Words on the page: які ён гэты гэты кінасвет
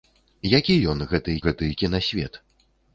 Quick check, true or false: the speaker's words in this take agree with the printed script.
true